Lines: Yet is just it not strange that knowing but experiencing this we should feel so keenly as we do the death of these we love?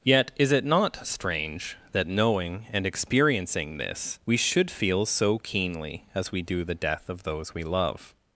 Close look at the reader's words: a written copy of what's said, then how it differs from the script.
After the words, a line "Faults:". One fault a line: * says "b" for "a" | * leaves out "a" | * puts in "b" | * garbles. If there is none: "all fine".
Yet is it not strange that knowing and experiencing this we should feel so keenly as we do the death of those we love?
Faults:
* leaves out "just"
* says "and" for "but"
* says "those" for "these"